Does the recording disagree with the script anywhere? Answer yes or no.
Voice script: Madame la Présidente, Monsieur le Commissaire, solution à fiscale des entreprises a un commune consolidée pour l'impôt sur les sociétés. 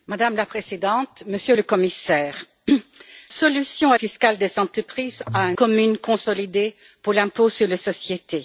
no